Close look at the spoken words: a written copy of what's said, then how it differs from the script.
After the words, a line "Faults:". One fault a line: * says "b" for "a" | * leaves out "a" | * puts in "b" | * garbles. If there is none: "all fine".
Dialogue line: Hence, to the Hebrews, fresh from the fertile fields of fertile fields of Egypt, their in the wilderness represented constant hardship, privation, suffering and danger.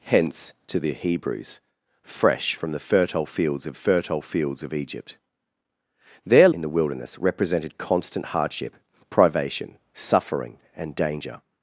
Hence, to the Hebrews, fresh from the fertile fields of fertile fields of Egypt, their in the wilderness represented constant hardship, privation, suffering and danger.
Faults:
all fine